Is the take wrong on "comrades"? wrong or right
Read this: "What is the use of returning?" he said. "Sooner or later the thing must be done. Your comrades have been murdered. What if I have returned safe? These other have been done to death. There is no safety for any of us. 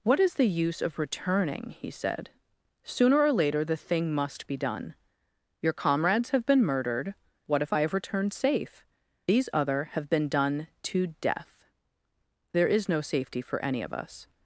right